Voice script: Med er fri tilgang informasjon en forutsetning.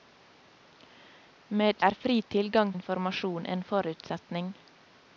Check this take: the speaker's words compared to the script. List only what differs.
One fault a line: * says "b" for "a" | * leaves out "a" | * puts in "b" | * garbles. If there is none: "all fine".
all fine